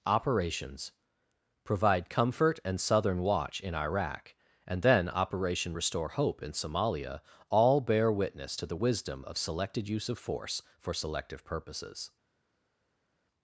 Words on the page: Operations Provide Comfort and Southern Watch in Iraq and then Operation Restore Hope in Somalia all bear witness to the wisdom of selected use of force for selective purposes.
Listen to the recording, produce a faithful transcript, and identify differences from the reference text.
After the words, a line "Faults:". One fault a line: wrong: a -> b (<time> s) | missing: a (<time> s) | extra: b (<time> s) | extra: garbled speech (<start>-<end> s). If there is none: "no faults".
Operations Provide Comfort and Southern Watch in Iraq and then Operation Restore Hope in Somalia all bear witness to the wisdom of selected use of force for selective purposes.
Faults:
no faults